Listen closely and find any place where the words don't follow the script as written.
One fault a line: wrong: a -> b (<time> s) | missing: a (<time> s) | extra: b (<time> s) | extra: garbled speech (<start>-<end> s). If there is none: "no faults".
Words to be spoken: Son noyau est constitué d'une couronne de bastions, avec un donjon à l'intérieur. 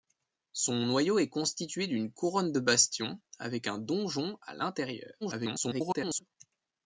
extra: garbled speech (5.2-6.2 s)